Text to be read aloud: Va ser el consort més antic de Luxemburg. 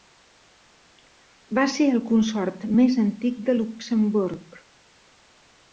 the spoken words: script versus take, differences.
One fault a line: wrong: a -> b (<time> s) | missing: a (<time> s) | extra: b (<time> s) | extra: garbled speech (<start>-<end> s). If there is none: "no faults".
no faults